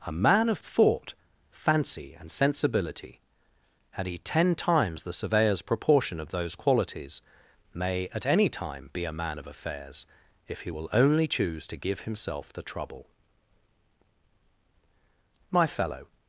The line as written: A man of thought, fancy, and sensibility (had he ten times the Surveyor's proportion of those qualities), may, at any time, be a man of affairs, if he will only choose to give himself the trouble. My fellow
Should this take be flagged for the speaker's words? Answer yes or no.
no